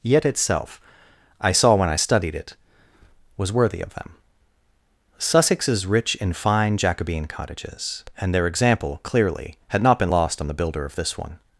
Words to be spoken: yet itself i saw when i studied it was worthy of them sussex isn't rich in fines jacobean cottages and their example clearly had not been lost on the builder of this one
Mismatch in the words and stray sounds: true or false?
true